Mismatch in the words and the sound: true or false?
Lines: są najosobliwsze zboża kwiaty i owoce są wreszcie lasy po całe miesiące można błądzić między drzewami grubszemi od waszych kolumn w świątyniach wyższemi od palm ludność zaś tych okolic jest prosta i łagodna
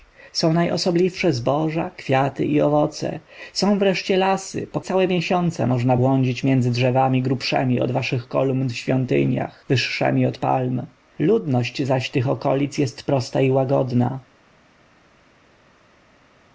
false